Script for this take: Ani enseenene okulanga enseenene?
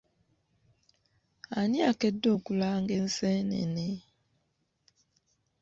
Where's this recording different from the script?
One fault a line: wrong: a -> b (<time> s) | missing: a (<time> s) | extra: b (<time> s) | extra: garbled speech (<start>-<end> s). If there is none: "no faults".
wrong: enseenene -> akedde (1.9 s)